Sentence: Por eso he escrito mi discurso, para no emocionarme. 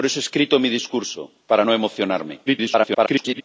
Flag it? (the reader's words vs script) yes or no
yes